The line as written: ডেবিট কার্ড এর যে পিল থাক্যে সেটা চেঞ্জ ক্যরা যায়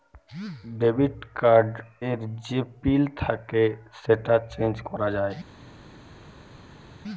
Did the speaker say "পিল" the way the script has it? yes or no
yes